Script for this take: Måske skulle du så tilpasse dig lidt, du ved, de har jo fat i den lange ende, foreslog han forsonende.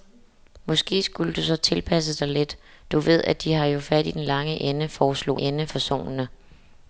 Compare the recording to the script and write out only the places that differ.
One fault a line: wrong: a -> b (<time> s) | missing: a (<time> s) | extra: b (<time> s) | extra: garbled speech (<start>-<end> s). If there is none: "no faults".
wrong: han -> ende (5.4 s)